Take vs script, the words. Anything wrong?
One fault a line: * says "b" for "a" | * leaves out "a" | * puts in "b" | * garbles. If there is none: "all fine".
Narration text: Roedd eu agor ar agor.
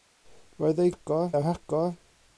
all fine